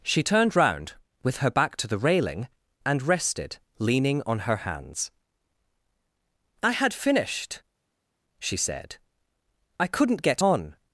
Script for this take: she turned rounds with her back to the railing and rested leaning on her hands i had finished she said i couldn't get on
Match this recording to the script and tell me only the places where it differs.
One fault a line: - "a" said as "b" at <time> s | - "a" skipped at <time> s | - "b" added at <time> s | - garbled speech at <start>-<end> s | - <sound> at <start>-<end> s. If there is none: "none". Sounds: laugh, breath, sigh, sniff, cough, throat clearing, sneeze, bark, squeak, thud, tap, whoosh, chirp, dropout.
- "rounds" said as "round" at 0.6 s